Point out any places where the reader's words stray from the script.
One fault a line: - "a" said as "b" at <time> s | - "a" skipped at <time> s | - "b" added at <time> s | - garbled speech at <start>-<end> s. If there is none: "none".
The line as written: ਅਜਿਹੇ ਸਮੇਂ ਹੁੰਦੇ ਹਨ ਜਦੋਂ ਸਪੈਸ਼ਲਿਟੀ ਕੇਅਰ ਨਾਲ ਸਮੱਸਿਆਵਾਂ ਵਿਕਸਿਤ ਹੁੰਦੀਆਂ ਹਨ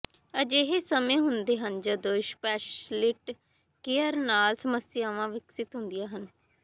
none